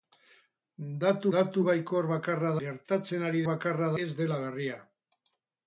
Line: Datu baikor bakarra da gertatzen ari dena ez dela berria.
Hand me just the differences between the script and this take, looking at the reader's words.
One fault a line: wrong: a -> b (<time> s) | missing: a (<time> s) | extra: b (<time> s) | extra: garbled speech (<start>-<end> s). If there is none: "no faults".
extra: datu (1.3 s)
missing: da (2.5 s)
wrong: dena -> bakarra (3.5 s)